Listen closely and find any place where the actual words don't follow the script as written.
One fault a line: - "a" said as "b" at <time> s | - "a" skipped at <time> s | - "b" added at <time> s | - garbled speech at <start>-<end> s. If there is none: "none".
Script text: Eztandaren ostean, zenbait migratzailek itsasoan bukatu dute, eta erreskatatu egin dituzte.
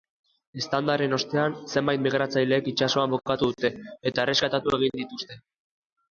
none